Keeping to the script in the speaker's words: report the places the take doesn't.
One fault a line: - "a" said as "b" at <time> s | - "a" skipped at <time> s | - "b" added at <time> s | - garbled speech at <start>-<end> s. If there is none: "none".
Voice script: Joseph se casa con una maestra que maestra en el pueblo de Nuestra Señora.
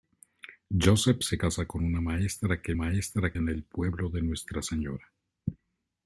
none